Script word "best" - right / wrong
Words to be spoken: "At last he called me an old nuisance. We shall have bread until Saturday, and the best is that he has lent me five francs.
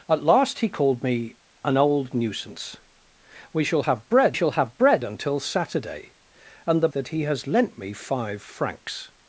wrong